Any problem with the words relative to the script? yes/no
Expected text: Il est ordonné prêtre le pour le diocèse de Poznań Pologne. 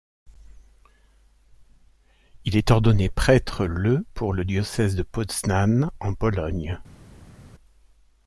yes